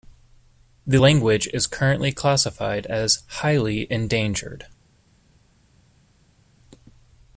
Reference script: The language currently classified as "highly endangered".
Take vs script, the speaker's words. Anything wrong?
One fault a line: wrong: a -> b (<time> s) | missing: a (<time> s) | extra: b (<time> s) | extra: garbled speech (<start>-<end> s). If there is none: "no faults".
extra: is (1.5 s)